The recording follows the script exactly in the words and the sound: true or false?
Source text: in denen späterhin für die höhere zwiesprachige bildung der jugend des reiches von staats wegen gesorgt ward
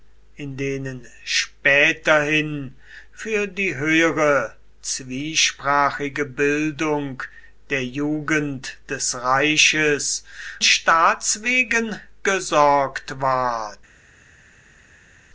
false